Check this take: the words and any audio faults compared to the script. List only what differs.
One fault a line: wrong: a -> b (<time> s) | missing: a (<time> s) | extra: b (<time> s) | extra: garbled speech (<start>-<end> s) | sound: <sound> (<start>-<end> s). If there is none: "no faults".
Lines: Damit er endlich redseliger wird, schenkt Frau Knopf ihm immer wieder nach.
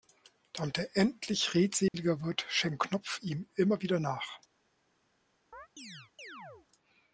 sound: dropout (1.9-1.9 s)
missing: Frau (2.8 s)
sound: chirp (5.5-6.7 s)